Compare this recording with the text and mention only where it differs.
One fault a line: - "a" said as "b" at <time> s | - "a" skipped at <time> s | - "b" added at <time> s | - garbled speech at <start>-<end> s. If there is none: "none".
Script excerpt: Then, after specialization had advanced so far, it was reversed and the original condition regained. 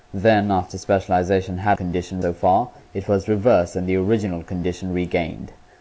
- "advanced" said as "condition" at 1.7 s